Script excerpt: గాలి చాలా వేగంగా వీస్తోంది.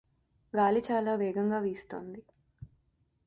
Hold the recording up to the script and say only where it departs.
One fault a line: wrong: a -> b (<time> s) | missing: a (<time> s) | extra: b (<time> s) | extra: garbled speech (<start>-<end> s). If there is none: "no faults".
no faults